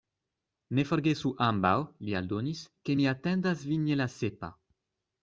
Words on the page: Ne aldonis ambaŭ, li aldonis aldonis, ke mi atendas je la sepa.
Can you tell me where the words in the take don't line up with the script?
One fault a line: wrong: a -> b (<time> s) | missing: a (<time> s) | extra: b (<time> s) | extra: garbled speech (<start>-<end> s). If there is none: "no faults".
wrong: aldonis -> forgesu (0.9 s)
missing: aldonis (2.6 s)
extra: vin (3.7 s)